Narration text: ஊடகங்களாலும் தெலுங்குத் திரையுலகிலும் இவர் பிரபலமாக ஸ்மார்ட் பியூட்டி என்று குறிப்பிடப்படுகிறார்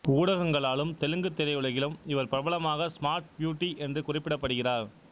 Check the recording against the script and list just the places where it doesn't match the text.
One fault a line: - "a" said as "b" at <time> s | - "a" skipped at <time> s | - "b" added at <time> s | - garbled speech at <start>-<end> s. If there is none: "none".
none